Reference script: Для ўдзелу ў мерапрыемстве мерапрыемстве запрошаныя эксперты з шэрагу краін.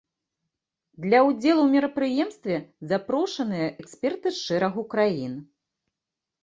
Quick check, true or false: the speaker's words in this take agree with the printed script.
false